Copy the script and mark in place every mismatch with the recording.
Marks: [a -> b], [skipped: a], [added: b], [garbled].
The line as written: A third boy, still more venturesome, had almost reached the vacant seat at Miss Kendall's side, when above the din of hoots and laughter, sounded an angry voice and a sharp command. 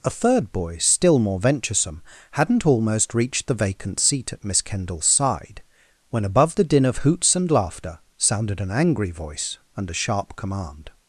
A third boy, still more venturesome, [had -> hadn't] almost reached the vacant seat at Miss Kendall's side, when above the din of hoots and laughter, sounded an angry voice and a sharp command.